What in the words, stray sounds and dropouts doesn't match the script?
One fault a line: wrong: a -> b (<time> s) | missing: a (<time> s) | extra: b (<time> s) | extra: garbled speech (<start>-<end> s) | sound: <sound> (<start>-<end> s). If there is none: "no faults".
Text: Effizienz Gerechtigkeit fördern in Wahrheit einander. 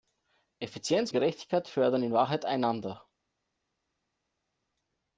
no faults